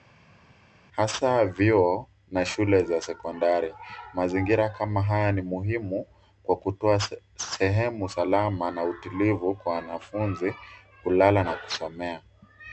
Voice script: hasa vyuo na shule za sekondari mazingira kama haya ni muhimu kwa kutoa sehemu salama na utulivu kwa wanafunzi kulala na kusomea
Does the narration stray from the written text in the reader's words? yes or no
no